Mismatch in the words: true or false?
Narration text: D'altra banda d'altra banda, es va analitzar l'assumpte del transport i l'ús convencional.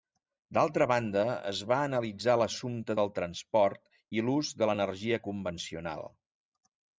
true